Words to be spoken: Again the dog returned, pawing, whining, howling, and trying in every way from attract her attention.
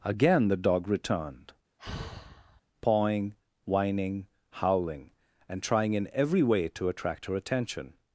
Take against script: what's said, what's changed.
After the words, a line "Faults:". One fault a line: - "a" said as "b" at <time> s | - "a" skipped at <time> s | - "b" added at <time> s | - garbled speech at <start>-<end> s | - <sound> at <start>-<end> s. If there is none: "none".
Again the dog returned, pawing, whining, howling, and trying in every way to attract her attention.
Faults:
- sigh at 1.8-2.6 s
- "from" said as "to" at 6.7 s